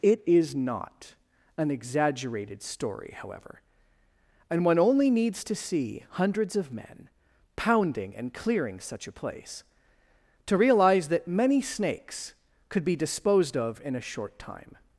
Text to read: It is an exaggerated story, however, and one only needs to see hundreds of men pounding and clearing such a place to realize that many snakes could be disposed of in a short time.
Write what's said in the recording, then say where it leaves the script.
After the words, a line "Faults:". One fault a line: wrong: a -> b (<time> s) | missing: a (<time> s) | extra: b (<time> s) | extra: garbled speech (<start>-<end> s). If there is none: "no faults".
It is not an exaggerated story, however, and one only needs to see hundreds of men pounding and clearing such a place to realize that many snakes could be disposed of in a short time.
Faults:
extra: not (0.6 s)